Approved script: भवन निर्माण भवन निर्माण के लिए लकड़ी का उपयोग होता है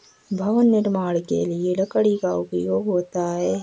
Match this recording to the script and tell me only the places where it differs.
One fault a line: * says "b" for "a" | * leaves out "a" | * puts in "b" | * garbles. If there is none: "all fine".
* leaves out "भवन निर्माण"